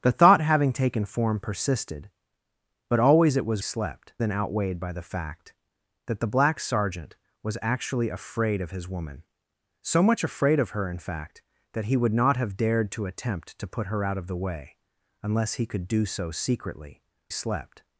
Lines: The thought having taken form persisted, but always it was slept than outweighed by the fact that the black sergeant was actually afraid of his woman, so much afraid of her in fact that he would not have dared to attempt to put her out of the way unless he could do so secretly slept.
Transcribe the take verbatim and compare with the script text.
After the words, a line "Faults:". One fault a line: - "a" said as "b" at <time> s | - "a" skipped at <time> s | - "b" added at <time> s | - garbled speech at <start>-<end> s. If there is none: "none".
The thought having taken form persisted, but always it was slept than outweighed by the fact that the black sergeant was actually afraid of his woman, so much afraid of her in fact that he would not have dared to attempt to put her out of the way unless he could do so secretly slept.
Faults:
none